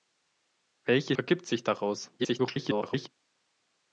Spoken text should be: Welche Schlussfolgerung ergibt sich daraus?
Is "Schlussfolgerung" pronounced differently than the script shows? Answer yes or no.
yes